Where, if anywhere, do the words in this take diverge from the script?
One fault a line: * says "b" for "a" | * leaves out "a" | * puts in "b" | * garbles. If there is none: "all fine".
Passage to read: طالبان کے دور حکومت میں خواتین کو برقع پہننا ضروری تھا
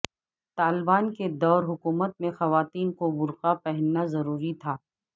all fine